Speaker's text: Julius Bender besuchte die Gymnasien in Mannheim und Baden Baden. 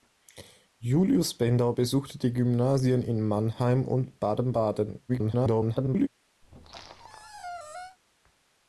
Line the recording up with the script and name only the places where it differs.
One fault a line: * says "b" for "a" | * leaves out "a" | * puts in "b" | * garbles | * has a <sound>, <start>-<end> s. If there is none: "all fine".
* garbles
* has a squeak, 6.4-8.0 s